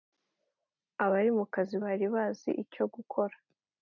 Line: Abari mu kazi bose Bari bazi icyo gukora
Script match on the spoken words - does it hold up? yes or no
no